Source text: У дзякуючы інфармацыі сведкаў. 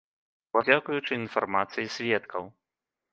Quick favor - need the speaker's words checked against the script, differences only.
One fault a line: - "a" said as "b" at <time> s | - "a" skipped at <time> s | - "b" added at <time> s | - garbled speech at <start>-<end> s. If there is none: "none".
none